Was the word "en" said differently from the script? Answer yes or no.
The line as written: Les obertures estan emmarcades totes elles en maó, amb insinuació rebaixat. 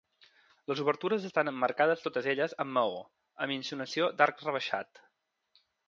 yes